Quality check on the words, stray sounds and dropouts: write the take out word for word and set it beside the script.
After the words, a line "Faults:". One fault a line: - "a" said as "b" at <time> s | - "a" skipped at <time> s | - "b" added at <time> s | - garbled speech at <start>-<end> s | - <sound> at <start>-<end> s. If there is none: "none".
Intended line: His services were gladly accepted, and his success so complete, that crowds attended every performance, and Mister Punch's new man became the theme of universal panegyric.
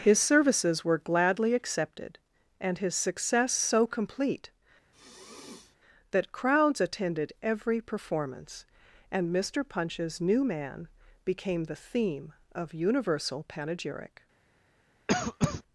His services were gladly accepted, and his success so complete, that crowds attended every performance, and Mister Punch's new man became the theme of universal panegyric.
Faults:
- sniff at 4.9-5.8 s
- cough at 15.1-15.6 s